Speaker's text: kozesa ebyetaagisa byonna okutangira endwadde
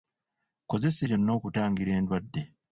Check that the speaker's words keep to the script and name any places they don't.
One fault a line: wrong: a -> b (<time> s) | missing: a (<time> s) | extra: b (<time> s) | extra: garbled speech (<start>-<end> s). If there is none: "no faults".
missing: ebyetaagisa (1.0 s)